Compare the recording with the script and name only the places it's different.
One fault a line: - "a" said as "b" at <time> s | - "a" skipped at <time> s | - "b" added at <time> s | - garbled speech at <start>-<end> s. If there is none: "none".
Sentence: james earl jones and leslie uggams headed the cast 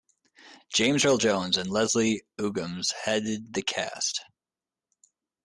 none